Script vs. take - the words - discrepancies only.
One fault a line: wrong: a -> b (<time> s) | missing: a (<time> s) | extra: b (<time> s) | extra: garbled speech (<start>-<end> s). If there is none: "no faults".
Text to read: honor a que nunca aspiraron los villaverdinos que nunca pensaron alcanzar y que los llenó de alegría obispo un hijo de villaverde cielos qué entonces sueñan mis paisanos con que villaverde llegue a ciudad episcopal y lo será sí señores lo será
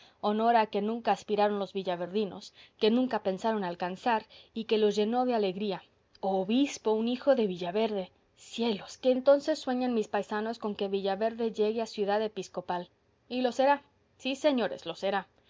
no faults